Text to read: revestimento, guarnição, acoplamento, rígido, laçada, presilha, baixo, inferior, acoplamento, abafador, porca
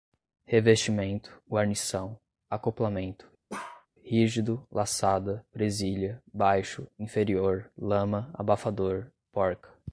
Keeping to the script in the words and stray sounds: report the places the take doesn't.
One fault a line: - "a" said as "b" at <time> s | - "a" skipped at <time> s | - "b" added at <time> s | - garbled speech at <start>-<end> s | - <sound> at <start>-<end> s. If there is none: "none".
- bark at 3.5-3.9 s
- "acoplamento" said as "lama" at 7.8 s